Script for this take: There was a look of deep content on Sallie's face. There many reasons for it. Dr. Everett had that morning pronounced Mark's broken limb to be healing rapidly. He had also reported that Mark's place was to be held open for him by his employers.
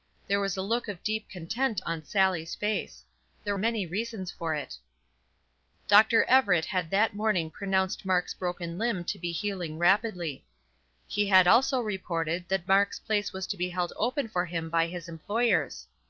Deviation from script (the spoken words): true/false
false